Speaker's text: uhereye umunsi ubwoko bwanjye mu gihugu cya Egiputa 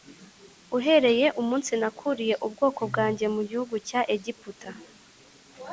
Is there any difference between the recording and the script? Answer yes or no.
yes